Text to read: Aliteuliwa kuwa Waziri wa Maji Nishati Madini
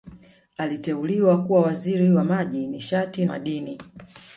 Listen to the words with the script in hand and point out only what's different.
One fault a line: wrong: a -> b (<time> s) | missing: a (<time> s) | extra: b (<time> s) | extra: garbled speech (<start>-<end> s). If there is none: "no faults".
no faults